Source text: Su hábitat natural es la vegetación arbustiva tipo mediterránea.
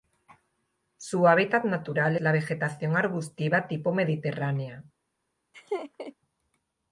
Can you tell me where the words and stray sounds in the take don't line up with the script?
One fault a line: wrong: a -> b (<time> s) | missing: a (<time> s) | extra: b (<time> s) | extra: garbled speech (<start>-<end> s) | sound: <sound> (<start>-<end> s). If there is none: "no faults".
missing: es (2.2 s)
sound: laugh (5.5-6.1 s)